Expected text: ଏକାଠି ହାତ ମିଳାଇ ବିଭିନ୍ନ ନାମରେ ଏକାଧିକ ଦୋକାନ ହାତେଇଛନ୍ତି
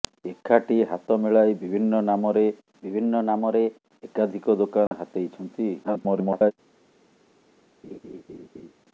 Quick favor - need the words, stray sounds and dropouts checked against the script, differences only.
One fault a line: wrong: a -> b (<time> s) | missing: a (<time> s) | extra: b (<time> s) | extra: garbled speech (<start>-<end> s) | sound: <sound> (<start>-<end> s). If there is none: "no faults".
extra: ବିଭିନ୍ନ ନାମରେ (2.8 s)
sound: dropout (4.9-4.9 s)
extra: garbled speech (5.8-6.5 s)
sound: laugh (7.8-8.7 s)